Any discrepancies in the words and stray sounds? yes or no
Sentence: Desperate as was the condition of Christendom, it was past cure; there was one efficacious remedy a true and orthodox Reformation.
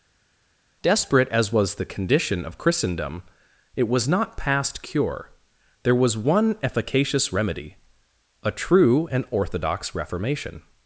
yes